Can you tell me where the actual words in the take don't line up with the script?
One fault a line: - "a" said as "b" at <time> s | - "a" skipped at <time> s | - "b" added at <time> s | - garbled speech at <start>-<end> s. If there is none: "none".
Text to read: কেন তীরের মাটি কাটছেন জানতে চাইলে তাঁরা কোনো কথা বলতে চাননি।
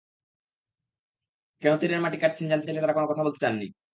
none